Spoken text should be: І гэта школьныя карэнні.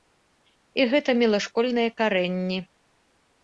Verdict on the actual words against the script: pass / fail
fail